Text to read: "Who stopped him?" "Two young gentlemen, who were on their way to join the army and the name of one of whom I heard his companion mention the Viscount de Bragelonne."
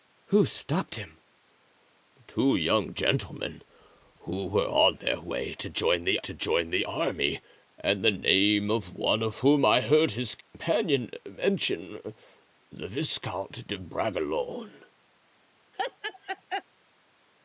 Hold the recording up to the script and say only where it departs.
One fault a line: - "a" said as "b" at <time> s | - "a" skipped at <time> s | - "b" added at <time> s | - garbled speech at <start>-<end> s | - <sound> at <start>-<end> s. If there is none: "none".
- "to join the" added at 6.2 s
- dropout at 10.4-10.5 s
- laugh at 15.7-16.6 s